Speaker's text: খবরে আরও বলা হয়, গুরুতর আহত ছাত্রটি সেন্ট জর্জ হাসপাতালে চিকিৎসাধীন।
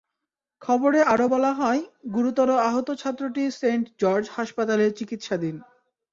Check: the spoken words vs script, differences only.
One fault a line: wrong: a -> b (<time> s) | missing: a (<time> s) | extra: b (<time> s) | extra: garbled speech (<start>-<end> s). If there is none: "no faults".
no faults